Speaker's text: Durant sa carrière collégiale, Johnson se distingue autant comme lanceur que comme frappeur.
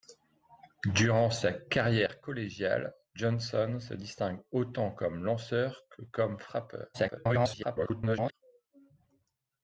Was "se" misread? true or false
false